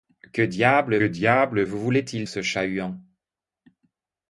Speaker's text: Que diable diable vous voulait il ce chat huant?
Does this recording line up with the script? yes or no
yes